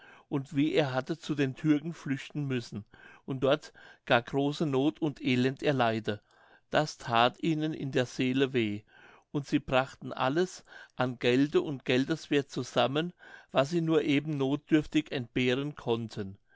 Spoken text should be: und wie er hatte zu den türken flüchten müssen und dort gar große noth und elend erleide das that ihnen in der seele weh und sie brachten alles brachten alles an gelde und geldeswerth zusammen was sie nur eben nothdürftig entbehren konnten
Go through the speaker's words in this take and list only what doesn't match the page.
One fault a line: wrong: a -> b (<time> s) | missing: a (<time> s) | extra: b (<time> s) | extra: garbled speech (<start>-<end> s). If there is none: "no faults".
missing: brachten alles (10.6 s)